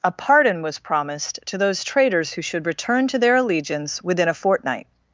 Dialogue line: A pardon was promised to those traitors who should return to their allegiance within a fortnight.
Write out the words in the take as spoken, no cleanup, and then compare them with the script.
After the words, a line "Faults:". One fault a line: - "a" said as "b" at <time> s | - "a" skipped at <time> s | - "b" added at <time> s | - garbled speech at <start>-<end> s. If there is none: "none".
A pardon was promised to those traitors who should return to their allegiance within a fortnight.
Faults:
none